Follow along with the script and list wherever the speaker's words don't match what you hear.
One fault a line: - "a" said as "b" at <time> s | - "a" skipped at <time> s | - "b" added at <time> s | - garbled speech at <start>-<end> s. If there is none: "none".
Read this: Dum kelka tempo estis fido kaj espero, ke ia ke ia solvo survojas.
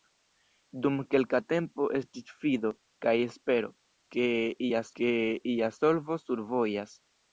none